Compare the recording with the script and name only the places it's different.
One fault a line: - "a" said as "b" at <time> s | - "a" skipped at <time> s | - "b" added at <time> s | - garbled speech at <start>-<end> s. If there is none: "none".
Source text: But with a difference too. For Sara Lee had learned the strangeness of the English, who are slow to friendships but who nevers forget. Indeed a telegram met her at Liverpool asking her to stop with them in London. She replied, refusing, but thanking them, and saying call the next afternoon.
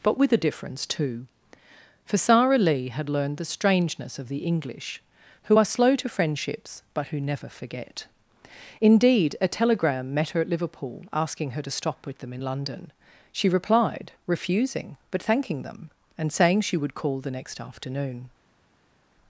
- "nevers" said as "never" at 7.2 s
- "she would" added at 16.6 s